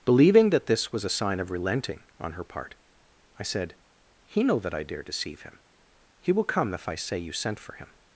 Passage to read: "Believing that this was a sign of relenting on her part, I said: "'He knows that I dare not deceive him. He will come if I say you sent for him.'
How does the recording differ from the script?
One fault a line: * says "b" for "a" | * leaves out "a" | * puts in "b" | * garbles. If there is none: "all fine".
* says "know" for "knows"
* leaves out "not"